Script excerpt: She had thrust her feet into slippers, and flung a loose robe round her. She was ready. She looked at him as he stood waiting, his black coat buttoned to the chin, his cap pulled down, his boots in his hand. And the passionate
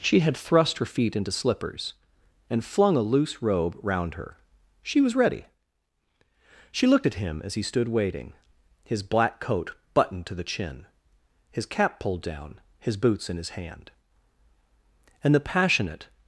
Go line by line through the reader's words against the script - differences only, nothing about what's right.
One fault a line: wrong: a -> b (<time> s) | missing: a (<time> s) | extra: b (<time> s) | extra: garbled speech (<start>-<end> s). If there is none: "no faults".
no faults